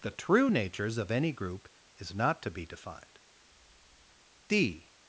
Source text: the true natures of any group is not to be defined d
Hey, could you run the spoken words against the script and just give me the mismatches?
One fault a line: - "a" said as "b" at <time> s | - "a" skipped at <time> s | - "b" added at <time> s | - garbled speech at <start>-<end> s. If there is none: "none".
none